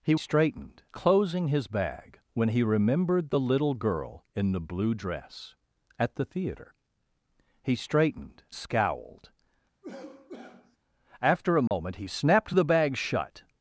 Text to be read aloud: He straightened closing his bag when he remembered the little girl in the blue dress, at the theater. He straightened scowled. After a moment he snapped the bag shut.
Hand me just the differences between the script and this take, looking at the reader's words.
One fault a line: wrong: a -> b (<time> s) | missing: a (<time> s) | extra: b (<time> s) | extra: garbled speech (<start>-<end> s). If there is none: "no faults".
no faults